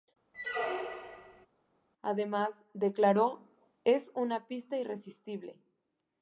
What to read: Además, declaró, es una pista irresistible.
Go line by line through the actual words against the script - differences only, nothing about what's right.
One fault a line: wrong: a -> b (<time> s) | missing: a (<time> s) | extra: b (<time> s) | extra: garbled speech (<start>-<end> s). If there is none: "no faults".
no faults